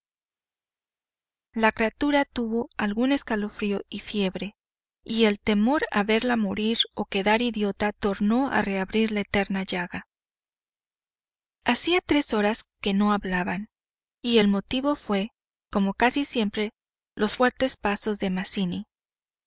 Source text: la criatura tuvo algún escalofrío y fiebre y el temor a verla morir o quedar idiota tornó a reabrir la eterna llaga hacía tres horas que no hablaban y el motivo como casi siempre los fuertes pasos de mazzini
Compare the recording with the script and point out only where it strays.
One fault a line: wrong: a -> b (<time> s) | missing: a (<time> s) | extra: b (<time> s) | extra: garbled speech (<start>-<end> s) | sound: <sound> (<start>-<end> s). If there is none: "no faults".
extra: fué (14.9 s)